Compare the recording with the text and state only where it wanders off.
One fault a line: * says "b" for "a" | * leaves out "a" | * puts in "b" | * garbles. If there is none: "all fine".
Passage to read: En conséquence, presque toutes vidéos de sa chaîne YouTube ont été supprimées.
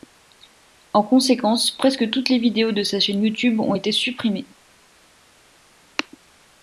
* puts in "les"